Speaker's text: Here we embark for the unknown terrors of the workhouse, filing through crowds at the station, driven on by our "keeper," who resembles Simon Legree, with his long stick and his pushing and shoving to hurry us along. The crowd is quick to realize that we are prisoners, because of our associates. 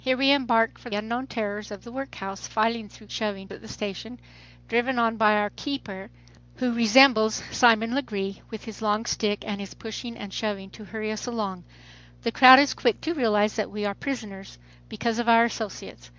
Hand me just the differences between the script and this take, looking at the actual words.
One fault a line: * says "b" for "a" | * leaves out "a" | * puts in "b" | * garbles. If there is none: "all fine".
* leaves out "the"
* says "shoving" for "crowds"